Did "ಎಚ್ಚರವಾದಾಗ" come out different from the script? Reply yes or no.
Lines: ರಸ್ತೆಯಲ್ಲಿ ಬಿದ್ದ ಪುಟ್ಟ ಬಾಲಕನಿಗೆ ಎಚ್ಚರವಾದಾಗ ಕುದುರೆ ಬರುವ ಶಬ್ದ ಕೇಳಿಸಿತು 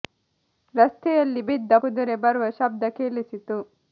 yes